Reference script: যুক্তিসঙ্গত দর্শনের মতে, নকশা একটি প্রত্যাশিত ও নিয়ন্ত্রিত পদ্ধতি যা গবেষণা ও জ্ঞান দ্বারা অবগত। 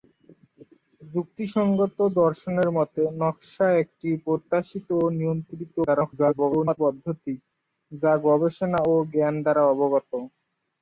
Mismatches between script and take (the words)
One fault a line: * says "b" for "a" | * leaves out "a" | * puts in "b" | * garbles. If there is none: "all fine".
* garbles